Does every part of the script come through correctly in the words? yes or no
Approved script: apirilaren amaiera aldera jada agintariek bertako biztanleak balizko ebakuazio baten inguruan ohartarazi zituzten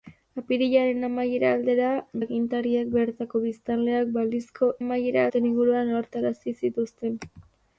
no